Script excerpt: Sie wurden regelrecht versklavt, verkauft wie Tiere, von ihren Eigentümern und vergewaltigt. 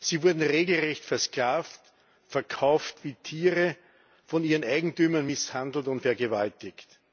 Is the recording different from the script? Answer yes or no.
yes